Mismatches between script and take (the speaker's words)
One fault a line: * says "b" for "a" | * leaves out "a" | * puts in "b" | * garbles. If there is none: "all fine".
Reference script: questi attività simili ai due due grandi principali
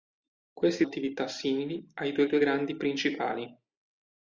all fine